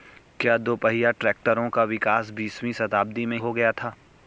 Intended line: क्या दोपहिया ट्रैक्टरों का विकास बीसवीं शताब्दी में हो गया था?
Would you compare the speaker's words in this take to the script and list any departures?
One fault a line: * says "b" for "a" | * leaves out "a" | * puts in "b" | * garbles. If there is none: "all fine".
all fine